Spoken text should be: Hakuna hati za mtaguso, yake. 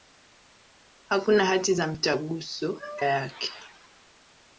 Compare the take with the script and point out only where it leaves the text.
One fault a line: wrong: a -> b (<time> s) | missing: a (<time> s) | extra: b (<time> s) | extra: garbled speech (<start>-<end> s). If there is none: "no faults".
no faults